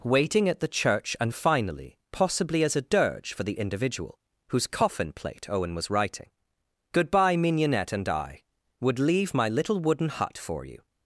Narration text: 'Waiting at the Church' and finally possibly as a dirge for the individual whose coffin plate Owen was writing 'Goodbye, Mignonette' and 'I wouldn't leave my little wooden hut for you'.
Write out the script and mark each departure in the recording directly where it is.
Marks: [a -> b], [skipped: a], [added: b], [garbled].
'Waiting at the Church' and finally possibly as a dirge for the individual whose coffin plate Owen was writing 'Goodbye, Mignonette' and 'I [wouldn't -> would] leave my little wooden hut for you'.